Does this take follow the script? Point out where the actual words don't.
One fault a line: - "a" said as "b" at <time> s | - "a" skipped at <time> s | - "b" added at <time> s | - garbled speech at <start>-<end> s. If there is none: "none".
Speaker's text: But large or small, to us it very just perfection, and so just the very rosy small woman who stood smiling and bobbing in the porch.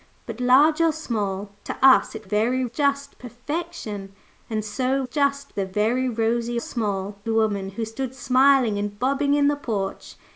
none